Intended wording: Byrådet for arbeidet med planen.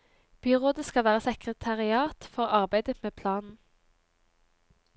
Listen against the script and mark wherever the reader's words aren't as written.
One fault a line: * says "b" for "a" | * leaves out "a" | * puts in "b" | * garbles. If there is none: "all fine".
* puts in "skal være sekretariat"